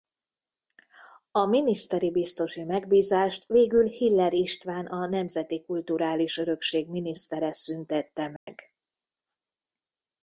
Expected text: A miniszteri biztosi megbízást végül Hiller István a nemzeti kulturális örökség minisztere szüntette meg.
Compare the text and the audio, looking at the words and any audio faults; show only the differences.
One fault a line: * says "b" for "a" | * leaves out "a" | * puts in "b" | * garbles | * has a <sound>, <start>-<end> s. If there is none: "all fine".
* has a dropout, 8.4-8.5 s